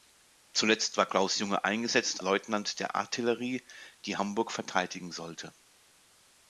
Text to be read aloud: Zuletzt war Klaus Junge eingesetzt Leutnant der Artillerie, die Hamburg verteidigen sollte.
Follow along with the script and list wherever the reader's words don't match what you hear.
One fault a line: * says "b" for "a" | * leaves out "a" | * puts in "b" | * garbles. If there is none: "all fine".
all fine